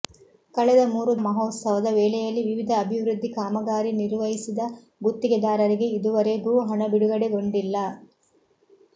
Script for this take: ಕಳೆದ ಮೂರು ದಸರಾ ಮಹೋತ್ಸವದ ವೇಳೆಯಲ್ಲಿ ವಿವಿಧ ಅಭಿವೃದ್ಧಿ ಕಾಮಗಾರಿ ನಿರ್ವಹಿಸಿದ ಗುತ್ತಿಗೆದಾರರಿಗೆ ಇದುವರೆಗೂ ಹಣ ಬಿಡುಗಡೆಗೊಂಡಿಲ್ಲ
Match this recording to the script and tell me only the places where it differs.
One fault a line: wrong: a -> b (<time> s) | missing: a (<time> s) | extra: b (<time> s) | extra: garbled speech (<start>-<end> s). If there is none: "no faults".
missing: ದಸರಾ (1.1 s)